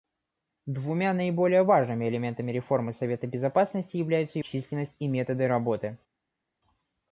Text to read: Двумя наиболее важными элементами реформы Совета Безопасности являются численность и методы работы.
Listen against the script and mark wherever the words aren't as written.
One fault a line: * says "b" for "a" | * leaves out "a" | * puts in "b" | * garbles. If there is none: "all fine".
all fine